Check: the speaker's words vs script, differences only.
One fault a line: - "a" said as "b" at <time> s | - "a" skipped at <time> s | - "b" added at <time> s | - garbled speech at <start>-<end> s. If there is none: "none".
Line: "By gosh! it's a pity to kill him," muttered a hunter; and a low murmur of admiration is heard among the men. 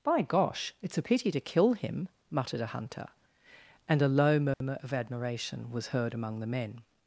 - "is" said as "was" at 5.7 s